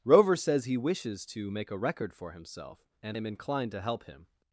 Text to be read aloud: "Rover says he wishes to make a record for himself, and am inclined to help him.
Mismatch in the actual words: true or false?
false